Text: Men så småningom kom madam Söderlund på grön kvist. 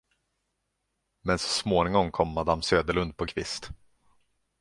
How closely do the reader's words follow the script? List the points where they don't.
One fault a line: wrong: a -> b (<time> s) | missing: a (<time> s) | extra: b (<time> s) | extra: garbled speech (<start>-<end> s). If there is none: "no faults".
missing: grön (3.2 s)